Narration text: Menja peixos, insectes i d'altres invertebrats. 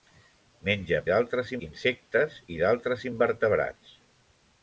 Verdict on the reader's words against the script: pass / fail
fail